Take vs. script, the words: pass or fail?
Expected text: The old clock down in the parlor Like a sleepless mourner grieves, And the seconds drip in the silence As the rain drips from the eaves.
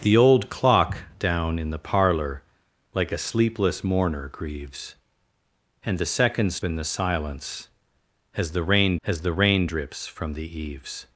fail